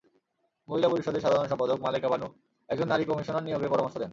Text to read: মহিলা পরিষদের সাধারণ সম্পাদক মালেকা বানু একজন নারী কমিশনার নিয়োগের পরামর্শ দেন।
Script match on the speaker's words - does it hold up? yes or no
yes